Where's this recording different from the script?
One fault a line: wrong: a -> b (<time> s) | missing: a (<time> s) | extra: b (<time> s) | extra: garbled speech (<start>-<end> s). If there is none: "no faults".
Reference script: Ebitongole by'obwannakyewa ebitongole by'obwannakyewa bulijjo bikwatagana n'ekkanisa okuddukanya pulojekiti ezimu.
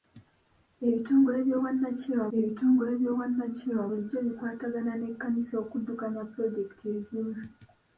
no faults